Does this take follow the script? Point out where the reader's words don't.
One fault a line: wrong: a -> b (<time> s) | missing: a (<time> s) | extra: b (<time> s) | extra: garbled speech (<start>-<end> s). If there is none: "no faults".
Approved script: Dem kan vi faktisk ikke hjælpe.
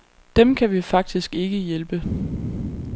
no faults